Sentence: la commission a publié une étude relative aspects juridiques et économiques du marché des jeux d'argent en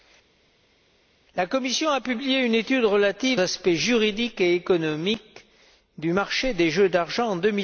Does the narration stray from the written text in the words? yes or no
no